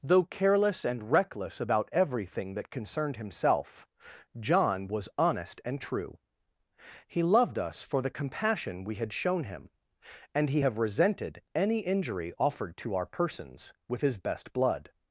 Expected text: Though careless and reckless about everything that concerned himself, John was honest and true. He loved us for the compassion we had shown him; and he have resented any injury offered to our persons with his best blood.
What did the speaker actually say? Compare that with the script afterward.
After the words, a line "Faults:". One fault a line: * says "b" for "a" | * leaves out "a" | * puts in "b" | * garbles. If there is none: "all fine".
Though careless and reckless about everything that concerned himself, John was honest and true. He loved us for the compassion we had shown him; and he have resented any injury offered to our persons with his best blood.
Faults:
all fine